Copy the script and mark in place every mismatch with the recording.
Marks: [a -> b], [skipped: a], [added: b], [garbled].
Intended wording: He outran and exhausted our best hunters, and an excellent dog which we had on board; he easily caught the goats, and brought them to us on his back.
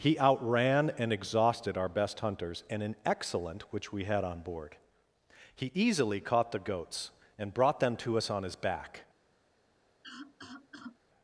He outran and exhausted our best hunters, and an excellent [skipped: dog] which we had on board; he easily caught the goats, and brought them to us on his back.